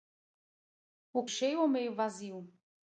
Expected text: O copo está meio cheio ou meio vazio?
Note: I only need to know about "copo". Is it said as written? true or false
false